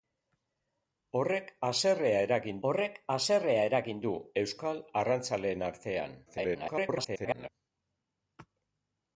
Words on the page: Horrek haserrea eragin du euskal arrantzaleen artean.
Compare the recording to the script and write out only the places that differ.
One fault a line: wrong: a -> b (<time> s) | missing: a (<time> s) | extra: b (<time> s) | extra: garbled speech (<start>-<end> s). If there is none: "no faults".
extra: horrek haserrea eragin (2.7 s)
extra: garbled speech (6.3-7.5 s)